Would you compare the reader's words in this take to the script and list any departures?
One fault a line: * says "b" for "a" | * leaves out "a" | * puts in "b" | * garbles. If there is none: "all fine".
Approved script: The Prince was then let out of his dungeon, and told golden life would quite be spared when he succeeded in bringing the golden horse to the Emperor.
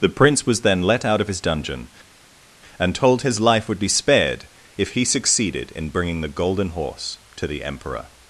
* says "his" for "golden"
* leaves out "quite"
* says "if" for "when"